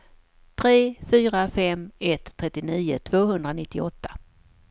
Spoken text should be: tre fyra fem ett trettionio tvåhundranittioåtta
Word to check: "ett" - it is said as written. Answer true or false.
true